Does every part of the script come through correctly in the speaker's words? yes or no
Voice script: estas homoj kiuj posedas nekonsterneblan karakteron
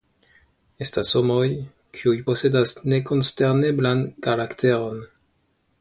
yes